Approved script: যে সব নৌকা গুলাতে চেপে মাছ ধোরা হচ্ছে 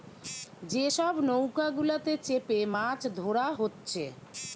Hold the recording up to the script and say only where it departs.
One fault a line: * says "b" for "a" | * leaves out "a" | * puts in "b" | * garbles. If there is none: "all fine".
all fine